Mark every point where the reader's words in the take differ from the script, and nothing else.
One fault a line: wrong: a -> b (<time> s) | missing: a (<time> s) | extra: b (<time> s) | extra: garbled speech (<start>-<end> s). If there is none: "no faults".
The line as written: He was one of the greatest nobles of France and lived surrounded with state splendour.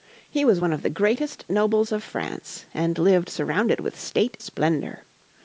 no faults